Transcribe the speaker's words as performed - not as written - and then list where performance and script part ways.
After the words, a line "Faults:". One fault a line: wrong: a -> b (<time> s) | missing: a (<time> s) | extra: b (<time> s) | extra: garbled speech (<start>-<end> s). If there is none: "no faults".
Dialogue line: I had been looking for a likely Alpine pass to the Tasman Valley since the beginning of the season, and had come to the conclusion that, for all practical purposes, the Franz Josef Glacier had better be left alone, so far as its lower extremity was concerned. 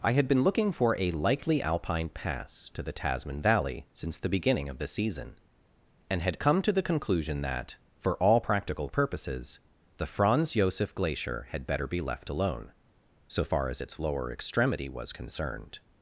I had been looking for a likely Alpine pass to the Tasman Valley since the beginning of the season, and had come to the conclusion that, for all practical purposes, the Franz Josef Glacier had better be left alone, so far as its lower extremity was concerned.
Faults:
no faults